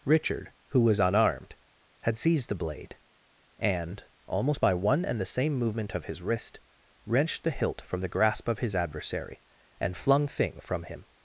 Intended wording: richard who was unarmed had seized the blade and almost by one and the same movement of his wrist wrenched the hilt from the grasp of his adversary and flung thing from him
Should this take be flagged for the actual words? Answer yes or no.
no